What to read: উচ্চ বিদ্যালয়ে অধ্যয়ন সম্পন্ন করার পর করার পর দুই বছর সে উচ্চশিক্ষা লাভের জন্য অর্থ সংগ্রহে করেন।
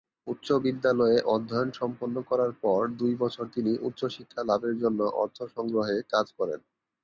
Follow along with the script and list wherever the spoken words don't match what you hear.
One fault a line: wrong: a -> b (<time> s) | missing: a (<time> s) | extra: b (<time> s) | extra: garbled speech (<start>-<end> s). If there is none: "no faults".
missing: করার পর (2.8 s)
wrong: সে -> তিনি (3.6 s)
extra: কাজ (6.1 s)